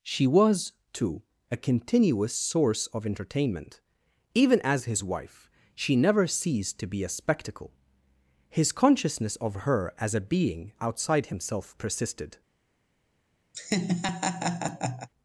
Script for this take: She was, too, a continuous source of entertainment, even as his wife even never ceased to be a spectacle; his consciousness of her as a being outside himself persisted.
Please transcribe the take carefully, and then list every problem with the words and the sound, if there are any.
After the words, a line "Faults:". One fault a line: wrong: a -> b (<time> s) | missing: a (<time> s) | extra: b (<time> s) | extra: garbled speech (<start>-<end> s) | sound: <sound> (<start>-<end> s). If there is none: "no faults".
She was, too, a continuous source of entertainment, even as his wife she never ceased to be a spectacle; his consciousness of her as a being outside himself persisted.
Faults:
wrong: even -> she (5.7 s)
sound: laugh (13.5-15.1 s)